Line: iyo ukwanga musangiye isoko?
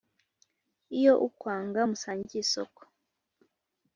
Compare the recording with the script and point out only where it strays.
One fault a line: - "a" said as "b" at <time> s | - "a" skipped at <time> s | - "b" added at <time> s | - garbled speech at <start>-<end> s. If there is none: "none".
none